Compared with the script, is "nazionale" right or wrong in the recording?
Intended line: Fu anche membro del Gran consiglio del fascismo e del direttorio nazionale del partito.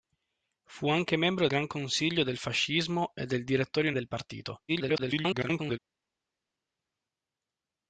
wrong